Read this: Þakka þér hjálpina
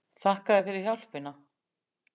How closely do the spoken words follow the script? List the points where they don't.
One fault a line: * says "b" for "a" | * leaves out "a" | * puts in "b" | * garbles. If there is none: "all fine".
* puts in "fyrir"